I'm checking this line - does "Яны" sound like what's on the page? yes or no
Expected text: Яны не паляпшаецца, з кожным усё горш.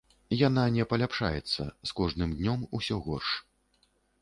no